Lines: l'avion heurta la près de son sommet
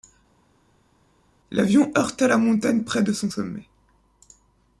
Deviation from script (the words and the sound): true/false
true